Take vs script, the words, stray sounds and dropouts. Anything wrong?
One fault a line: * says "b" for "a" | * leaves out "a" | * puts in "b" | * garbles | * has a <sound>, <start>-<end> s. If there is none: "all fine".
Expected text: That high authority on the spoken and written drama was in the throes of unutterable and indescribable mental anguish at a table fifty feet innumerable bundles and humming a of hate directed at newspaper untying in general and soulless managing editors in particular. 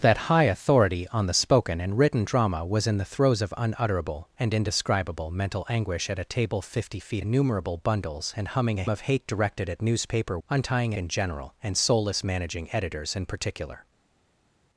all fine